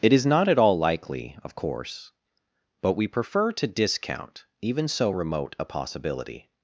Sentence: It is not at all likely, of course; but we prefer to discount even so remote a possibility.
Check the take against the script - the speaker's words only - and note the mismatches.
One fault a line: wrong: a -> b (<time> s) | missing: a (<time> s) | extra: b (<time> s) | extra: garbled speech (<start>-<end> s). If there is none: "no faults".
no faults